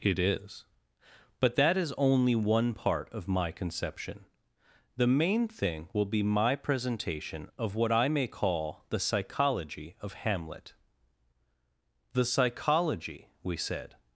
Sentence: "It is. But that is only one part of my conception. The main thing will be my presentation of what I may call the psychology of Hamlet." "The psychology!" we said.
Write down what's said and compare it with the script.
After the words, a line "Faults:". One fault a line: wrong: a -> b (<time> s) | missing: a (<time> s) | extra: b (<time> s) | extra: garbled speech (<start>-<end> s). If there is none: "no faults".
"It is. But that is only one part of my conception. The main thing will be my presentation of what I may call the psychology of Hamlet." "The psychology!" we said.
Faults:
no faults